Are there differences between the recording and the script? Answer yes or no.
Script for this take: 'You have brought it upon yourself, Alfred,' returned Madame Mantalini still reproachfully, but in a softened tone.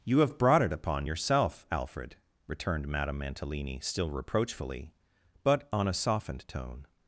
yes